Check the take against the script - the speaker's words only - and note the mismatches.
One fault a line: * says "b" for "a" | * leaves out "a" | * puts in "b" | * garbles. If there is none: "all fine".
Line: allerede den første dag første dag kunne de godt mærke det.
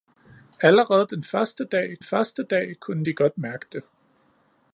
all fine